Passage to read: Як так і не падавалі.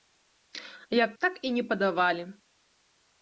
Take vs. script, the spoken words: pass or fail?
pass